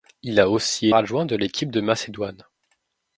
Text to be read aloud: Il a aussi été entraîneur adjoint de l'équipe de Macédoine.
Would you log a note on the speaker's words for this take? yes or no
yes